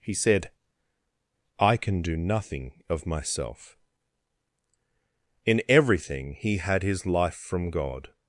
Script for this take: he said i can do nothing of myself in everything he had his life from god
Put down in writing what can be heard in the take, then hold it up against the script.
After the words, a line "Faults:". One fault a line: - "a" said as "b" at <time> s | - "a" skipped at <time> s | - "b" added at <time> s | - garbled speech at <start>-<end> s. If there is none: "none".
he said i can do nothing of myself in everything he had his life from god
Faults:
none